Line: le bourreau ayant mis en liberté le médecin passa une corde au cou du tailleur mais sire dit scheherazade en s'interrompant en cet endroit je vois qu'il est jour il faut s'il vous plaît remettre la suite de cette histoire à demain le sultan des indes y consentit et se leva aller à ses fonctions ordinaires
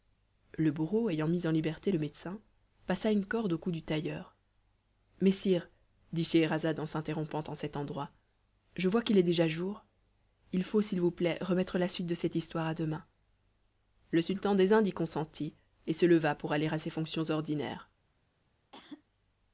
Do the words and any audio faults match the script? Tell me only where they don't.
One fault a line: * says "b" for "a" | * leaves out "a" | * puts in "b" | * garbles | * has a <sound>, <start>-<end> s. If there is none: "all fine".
* puts in "déjà"
* puts in "pour"
* has a cough, 18.7-19.0 s